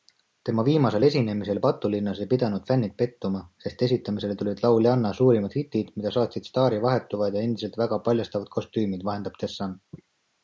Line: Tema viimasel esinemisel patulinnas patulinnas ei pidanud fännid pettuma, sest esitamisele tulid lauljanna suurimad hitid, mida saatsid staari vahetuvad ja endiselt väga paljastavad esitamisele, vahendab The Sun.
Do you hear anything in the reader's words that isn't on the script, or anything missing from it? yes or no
yes